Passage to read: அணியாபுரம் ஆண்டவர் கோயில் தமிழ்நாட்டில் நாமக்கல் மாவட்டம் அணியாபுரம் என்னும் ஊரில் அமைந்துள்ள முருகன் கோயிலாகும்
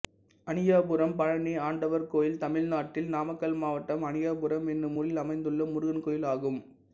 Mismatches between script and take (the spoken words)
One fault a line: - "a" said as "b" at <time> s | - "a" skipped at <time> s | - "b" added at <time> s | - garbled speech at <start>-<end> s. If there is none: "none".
- "பழனி" added at 1.2 s